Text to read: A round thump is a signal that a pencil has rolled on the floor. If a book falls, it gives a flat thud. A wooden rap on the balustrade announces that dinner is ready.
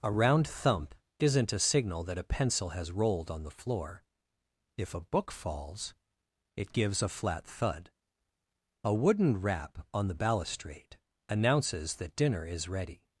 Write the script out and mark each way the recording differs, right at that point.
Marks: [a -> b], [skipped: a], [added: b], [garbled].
A round thump [is -> isn't] a signal that a pencil has rolled on the floor. If a book falls, it gives a flat thud. A wooden rap on the balustrade announces that dinner is ready.